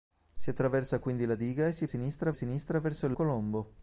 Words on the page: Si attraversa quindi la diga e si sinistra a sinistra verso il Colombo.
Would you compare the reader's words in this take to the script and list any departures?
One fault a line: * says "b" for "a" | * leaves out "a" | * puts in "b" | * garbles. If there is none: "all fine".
all fine